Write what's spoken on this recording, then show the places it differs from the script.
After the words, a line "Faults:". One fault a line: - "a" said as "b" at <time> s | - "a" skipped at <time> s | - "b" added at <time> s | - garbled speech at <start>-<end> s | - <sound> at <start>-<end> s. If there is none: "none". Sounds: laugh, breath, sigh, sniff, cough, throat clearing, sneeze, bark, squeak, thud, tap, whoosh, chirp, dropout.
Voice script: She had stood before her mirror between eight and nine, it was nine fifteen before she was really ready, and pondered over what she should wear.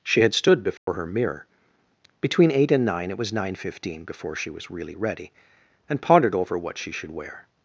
She had stood before her mirror between eight and nine, it was nine fifteen before she was really ready, and pondered over what she should wear.
Faults:
- dropout at 0.8-0.9 s